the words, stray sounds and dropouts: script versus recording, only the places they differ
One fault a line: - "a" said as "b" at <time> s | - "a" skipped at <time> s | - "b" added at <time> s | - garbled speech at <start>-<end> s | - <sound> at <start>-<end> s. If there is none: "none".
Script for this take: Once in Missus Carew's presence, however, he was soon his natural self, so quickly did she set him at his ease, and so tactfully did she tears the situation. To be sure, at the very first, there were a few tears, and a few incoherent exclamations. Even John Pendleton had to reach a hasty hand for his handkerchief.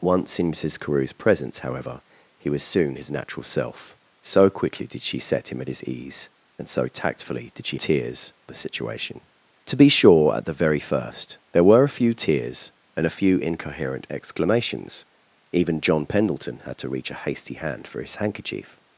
none